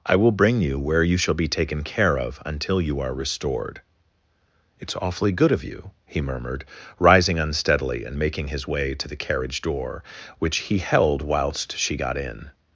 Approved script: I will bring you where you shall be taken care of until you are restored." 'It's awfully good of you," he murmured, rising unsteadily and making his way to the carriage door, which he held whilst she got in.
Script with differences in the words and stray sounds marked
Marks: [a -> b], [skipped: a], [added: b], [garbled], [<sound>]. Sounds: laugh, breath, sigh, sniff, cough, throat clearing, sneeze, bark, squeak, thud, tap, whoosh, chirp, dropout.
I will bring you where you shall be taken care of until you are restored." 'It's awfully good of you," he murmured, rising unsteadily and making his way to the carriage door, which he held whilst she got in.